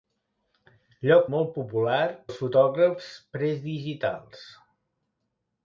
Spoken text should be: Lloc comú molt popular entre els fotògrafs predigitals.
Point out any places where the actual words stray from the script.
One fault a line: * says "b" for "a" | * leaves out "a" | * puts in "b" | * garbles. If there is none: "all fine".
* leaves out "comú"
* leaves out "entre"